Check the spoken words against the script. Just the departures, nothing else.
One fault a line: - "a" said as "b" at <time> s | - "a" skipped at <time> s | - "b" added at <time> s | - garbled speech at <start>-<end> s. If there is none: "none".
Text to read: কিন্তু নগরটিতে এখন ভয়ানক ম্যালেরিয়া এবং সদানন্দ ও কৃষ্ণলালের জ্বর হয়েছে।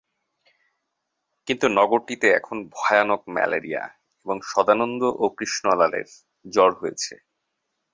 none